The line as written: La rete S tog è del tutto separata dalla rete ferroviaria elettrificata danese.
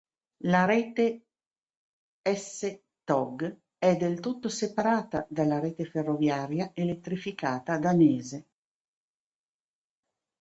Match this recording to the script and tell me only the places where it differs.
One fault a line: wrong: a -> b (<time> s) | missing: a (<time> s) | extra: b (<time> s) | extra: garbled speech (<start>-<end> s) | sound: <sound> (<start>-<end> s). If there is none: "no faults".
no faults